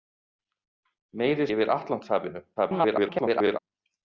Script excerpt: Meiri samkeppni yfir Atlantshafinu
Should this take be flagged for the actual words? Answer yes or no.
yes